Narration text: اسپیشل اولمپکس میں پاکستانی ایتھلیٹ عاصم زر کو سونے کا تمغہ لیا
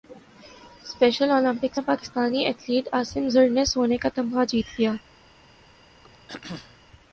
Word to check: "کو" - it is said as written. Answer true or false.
false